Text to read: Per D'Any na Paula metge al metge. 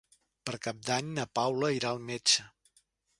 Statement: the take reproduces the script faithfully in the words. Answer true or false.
false